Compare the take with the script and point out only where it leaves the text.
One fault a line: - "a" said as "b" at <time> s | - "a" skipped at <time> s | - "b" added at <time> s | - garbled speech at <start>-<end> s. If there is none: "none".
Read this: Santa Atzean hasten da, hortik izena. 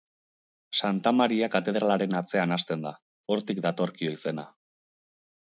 - "Maria katedralaren" added at 1.2 s
- "datorkio" added at 3.7 s